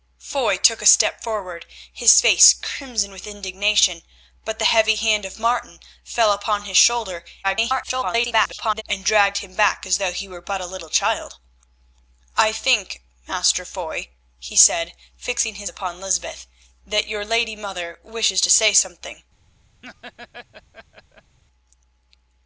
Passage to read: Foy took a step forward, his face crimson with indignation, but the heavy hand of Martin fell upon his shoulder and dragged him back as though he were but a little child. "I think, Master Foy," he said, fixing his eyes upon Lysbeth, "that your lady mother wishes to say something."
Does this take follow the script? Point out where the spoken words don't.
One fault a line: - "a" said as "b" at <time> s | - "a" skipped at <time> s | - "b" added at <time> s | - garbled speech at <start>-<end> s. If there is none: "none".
- garbled speech at 7.4-8.8 s
- "eyes" skipped at 15.7 s